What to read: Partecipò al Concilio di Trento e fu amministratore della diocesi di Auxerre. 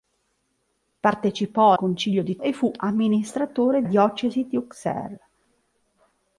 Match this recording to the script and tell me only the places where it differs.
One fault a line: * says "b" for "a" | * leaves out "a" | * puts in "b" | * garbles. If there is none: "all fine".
* leaves out "al"
* leaves out "Trento"
* leaves out "della"